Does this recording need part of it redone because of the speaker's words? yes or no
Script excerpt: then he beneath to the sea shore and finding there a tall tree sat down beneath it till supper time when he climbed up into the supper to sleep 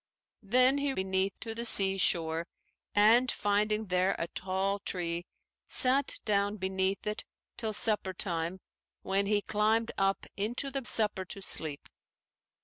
no